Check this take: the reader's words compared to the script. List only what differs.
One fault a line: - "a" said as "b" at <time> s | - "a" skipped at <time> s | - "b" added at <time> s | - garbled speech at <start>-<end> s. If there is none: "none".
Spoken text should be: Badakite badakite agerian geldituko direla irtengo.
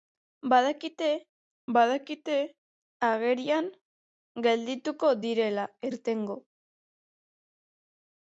none